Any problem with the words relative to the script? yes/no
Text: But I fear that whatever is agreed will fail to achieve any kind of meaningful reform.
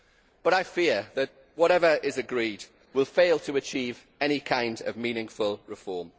no